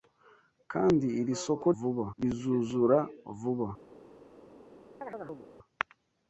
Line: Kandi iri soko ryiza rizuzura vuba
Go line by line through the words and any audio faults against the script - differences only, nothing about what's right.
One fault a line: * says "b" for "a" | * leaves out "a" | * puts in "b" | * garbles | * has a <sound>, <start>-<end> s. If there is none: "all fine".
* says "vuba" for "ryiza"
* has a chirp, 5.0-5.5 s